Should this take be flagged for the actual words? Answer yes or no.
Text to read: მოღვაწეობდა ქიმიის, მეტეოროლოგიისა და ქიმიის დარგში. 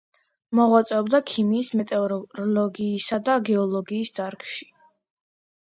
yes